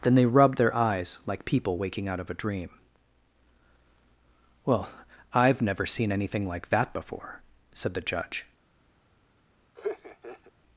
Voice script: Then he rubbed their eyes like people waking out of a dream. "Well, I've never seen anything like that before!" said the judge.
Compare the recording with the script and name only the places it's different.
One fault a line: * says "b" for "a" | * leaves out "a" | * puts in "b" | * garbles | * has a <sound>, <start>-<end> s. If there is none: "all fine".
* says "they" for "he"
* has a laugh, 9.8-10.5 s